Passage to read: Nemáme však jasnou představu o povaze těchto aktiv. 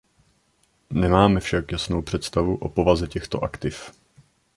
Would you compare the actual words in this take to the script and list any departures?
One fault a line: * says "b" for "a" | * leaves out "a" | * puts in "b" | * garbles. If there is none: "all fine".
all fine